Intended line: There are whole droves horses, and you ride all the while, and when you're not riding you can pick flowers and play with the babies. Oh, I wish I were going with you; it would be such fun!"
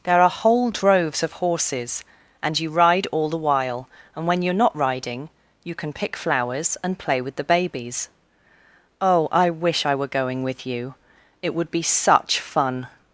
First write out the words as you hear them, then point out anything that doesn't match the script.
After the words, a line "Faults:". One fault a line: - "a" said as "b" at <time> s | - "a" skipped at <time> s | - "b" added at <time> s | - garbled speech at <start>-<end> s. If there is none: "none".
There are whole droves of horses, and you ride all the while, and when you're not riding you can pick flowers and play with the babies. Oh, I wish I were going with you; it would be such fun!"
Faults:
- "of" added at 1.2 s